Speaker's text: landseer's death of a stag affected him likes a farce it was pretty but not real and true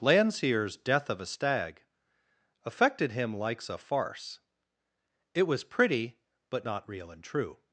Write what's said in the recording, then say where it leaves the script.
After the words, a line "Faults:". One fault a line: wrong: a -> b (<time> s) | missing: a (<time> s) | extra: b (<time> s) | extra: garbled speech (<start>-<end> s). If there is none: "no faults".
landseer's death of a stag affected him likes a farce it was pretty but not real and true
Faults:
no faults